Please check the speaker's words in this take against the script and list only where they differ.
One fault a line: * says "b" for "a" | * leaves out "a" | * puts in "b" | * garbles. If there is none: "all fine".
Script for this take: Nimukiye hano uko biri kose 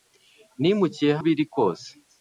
* leaves out "hano uko"